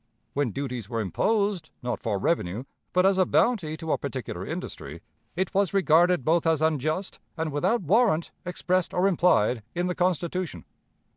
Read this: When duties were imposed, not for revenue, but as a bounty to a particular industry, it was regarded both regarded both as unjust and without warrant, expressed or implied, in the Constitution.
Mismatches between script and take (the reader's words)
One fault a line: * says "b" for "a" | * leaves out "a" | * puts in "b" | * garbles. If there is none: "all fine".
* leaves out "regarded both"